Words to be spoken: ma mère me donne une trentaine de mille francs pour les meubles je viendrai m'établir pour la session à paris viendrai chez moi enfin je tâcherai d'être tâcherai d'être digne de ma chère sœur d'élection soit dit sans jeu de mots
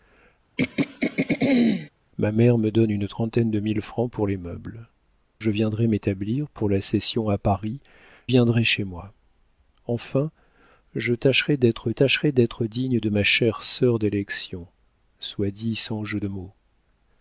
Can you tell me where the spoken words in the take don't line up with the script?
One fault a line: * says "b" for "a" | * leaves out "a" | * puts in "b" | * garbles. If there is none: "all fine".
all fine